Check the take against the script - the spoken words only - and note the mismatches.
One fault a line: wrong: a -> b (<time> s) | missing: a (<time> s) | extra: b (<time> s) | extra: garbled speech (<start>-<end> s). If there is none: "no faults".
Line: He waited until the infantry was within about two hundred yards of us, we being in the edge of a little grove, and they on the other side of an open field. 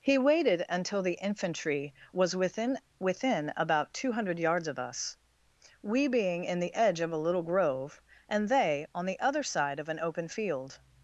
extra: within (3.0 s)